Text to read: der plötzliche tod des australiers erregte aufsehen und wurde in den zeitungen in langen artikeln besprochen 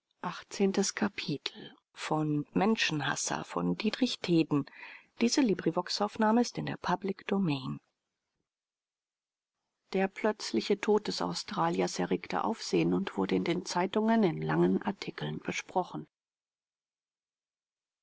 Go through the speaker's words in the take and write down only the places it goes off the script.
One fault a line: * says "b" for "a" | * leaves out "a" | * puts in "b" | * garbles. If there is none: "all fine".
all fine